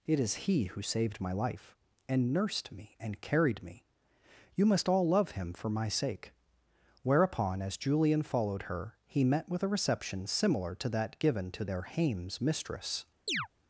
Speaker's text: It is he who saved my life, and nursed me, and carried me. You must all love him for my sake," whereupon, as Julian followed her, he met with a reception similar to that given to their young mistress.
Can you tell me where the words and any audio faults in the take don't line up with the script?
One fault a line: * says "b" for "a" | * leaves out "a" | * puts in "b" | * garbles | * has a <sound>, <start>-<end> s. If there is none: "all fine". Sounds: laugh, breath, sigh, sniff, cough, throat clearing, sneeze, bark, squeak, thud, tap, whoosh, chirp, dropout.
* says "hames" for "young"
* has a chirp, 13.3-13.5 s